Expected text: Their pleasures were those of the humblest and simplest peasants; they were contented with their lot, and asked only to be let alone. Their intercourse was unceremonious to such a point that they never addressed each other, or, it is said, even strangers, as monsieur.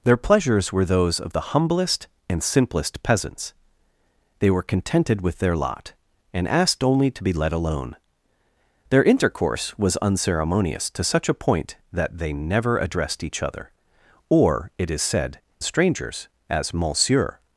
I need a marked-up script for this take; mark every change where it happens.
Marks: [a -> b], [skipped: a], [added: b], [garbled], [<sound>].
Their pleasures were those of the humblest and simplest peasants; they were contented with their lot, and asked only to be let alone. Their intercourse was unceremonious to such a point that they never addressed each other, or, it is said, [skipped: even] strangers, as monsieur.